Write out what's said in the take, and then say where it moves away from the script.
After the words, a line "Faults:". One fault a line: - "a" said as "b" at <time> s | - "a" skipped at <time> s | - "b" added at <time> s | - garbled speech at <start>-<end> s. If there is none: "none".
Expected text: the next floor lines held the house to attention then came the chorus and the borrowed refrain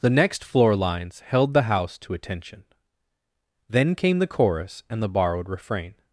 the next floor lines held the house to attention then came the chorus and the borrowed refrain
Faults:
none